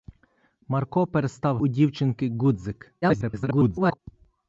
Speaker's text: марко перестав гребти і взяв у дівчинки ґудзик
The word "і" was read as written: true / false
false